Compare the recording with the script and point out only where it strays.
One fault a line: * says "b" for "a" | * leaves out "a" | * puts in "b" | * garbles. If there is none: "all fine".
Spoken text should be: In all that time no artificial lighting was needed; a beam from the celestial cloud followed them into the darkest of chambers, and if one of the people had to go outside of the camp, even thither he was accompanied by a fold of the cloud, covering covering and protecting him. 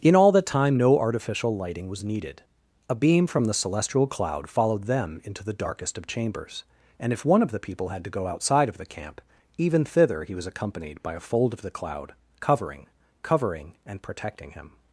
all fine